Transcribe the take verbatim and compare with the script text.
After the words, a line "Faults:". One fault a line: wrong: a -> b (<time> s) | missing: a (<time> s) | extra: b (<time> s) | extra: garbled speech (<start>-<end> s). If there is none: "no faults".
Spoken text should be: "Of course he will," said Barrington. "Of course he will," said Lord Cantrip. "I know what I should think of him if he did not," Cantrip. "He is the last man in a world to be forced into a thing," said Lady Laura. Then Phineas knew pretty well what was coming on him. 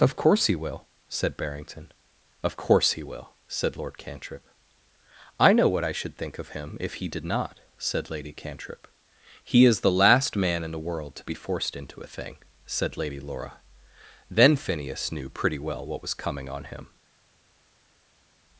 "Of course he will," said Barrington. "Of course he will," said Lord Cantrip. "I know what I should think of him if he did not," said Lady Cantrip. "He is the last man in the world to be forced into a thing," said Lady Laura. Then Phineas knew pretty well what was coming on him.
Faults:
extra: said Lady (7.8 s)
wrong: a -> the (10.7 s)